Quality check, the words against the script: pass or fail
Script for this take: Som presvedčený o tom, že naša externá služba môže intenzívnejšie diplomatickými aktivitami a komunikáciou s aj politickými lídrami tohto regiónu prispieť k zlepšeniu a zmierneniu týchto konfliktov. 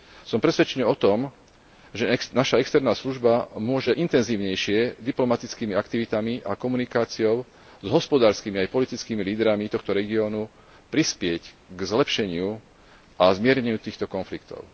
fail